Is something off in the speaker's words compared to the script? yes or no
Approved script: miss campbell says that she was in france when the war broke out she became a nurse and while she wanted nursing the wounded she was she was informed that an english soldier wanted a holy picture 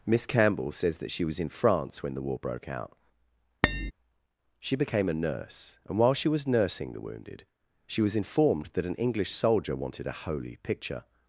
yes